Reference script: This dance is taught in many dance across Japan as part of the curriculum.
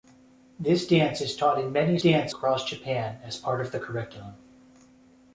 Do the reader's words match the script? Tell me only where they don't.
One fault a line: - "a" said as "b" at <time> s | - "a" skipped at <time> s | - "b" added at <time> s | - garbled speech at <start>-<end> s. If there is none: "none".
none